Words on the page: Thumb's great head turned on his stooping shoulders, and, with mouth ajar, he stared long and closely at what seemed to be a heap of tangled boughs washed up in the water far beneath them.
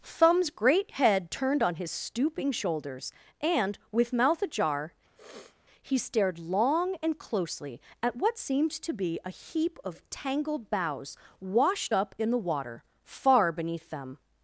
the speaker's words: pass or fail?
pass